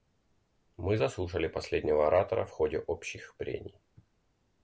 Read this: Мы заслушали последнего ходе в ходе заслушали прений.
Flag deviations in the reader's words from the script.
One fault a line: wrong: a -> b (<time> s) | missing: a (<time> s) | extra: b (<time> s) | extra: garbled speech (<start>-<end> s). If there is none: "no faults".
wrong: ходе -> оратора (2.1 s)
wrong: заслушали -> общих (2.8 s)